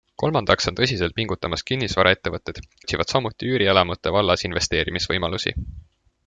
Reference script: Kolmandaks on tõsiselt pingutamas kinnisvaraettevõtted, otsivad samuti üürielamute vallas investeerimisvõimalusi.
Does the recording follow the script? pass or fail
pass